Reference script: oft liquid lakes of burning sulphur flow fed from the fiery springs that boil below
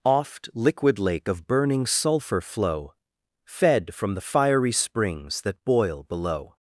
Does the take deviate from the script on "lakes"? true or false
true